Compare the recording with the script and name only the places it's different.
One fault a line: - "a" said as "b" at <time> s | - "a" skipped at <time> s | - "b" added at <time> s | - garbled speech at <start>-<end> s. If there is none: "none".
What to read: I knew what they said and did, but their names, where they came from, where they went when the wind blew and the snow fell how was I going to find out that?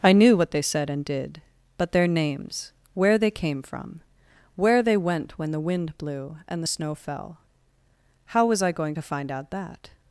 none